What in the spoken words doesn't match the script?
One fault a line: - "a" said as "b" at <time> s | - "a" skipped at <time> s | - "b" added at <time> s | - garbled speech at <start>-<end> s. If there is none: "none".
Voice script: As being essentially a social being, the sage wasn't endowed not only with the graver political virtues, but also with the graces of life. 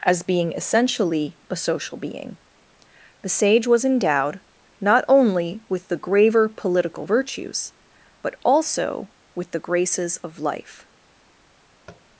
- "wasn't" said as "was" at 3.7 s